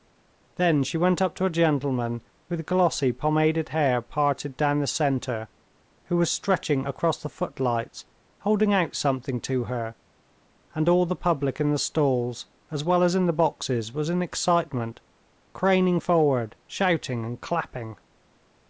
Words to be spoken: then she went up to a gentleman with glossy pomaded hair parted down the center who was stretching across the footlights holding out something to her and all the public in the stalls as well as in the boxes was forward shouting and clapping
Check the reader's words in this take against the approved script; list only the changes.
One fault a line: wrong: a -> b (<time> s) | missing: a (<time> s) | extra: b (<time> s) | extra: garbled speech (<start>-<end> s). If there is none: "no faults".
extra: in excitement craning (14.1 s)